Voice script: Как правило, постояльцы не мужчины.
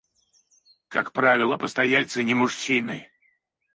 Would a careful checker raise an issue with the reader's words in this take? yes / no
no